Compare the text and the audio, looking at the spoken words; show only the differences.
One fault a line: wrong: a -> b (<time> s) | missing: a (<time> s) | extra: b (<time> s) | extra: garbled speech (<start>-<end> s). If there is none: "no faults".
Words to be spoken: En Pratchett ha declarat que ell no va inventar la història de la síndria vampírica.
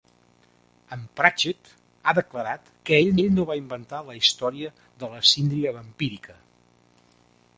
extra: ell (3.2 s)